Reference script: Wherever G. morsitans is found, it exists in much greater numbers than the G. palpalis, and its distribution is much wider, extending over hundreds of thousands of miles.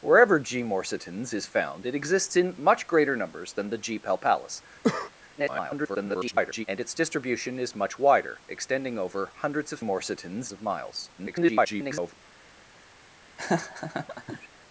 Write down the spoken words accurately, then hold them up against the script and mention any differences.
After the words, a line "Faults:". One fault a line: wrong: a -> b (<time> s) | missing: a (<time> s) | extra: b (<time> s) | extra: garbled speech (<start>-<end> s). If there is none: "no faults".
Wherever G. morsitans is found, it exists in much greater numbers than the G. palpalis, [garbled] and its distribution is much wider, extending over hundreds of morsitans of miles. [garbled]
Faults:
extra: garbled speech (5.4-6.7 s)
wrong: thousands -> morsitans (9.8 s)
extra: garbled speech (11.2-12.1 s)